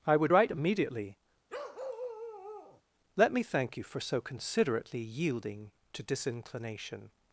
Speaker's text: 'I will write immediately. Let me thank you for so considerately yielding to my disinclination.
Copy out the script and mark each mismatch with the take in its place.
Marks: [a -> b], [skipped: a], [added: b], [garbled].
'I [will -> would] write immediately. Let me thank you for so considerately yielding to [skipped: my] disinclination.